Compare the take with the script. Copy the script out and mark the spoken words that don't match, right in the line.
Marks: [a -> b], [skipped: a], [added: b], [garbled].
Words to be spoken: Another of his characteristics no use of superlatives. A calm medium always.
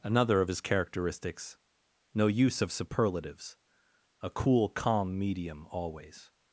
Another of his characteristics no use of superlatives. A [added: cool] calm medium always.